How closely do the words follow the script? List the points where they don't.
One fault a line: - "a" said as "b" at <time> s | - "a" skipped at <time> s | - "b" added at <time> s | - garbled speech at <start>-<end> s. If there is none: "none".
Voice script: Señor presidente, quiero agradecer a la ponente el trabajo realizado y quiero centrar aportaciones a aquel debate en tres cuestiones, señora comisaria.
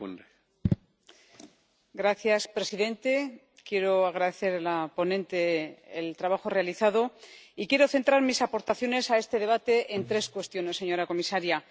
- "mis" added at 8.2 s
- "aquel" said as "este" at 9.2 s